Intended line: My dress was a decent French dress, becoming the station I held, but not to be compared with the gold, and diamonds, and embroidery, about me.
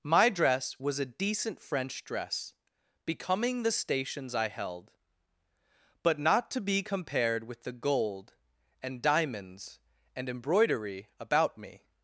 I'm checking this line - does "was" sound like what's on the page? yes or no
yes